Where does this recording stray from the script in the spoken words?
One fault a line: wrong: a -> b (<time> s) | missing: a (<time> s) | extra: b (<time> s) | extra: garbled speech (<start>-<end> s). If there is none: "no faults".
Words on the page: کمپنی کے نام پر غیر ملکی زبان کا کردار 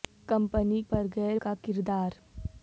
missing: کے نام (0.8 s)
missing: ملکی زبان (1.4 s)